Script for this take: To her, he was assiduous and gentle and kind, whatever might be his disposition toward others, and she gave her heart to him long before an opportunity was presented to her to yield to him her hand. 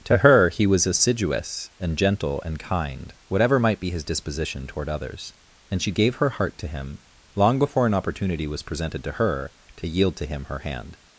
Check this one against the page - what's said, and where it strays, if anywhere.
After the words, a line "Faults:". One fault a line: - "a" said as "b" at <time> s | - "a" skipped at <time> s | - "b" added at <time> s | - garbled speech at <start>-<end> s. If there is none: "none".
To her, he was assiduous and gentle and kind, whatever might be his disposition toward others, and she gave her heart to him long before an opportunity was presented to her to yield to him her hand.
Faults:
none